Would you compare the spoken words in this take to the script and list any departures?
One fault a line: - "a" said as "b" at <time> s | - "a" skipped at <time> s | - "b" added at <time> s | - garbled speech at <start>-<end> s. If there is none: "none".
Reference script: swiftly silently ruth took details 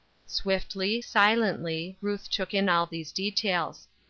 - "in all these" added at 2.5 s